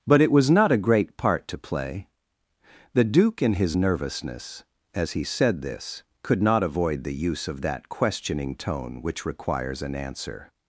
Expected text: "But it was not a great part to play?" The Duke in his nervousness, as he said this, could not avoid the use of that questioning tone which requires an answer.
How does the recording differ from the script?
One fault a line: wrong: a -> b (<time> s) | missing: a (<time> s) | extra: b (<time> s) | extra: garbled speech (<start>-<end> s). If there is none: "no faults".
no faults